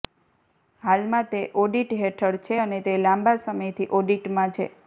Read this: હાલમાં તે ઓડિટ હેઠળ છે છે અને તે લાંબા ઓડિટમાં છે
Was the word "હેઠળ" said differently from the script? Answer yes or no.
no